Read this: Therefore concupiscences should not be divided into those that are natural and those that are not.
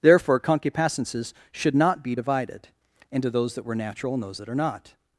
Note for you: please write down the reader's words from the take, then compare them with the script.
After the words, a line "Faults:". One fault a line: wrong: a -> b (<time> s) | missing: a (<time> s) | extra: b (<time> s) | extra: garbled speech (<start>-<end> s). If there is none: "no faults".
Therefore concupiscences should not be divided into those that were natural and those that are not.
Faults:
wrong: are -> were (3.6 s)